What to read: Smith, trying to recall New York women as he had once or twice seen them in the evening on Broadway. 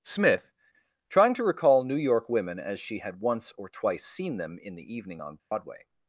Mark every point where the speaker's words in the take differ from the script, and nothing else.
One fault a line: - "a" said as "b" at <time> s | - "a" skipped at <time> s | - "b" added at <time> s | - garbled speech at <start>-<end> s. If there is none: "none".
- "he" said as "she" at 2.8 s